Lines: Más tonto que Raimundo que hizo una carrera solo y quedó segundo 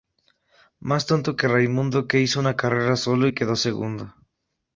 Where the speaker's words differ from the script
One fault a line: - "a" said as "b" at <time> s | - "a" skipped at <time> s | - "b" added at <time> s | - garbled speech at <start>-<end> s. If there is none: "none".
none